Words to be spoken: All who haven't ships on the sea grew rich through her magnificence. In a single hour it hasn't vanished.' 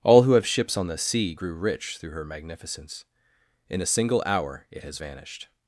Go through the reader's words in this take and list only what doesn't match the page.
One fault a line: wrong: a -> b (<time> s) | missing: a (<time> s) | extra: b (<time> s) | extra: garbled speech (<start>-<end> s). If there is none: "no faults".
wrong: haven't -> have (0.3 s)
wrong: hasn't -> has (4.8 s)